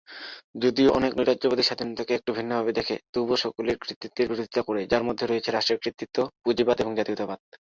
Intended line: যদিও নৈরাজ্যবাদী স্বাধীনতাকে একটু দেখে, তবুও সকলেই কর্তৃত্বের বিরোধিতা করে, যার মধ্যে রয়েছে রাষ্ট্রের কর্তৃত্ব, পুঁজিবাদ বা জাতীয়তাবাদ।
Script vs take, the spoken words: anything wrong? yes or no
yes